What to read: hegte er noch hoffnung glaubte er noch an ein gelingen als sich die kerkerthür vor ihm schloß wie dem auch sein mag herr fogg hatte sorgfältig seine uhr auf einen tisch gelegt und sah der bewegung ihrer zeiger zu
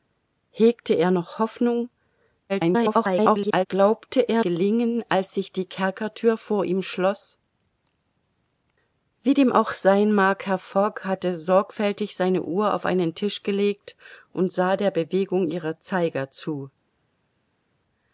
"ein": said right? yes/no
no